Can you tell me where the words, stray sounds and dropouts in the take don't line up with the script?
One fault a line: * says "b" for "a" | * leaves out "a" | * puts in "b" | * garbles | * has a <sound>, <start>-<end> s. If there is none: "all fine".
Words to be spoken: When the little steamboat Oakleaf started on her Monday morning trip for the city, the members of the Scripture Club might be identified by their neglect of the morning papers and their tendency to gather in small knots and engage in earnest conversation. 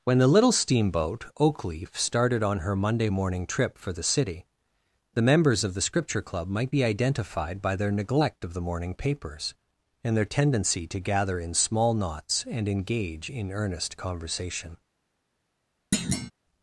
* has a thud, 15.9-16.3 s